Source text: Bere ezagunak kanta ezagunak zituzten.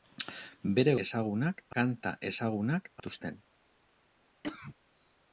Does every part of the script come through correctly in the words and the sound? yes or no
no